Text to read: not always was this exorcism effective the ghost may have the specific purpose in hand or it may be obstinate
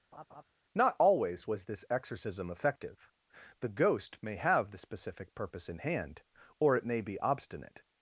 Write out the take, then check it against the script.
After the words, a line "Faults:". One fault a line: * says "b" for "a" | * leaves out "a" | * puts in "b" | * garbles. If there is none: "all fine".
not always was this exorcism effective the ghost may have the specific purpose in hand or it may be obstinate
Faults:
all fine